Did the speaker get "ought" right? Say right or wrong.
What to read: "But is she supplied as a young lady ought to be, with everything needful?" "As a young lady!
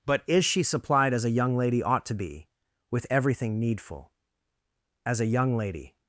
right